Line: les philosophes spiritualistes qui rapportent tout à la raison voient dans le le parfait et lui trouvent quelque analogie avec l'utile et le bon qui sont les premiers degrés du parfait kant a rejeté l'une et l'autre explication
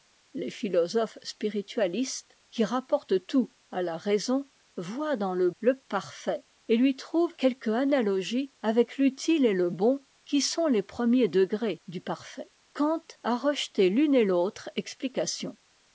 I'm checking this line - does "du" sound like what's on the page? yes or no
yes